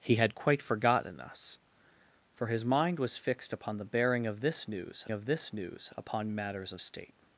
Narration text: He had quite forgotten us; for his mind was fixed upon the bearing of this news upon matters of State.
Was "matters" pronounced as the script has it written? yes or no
yes